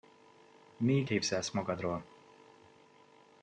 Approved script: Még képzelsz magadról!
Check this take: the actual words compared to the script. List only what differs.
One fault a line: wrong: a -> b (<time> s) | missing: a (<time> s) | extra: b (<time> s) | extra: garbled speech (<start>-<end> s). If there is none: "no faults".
no faults